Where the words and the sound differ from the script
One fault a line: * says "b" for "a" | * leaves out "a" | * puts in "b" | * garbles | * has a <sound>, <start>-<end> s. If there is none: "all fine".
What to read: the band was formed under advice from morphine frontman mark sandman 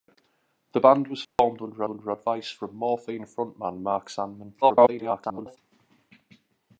* has a dropout, 1.2-1.4 s
* puts in "under"
* garbles